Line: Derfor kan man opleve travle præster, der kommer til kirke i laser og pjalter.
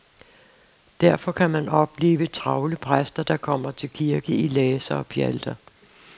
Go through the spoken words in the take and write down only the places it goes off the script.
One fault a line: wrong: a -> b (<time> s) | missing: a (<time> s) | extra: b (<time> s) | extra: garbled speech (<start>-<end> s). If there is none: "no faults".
no faults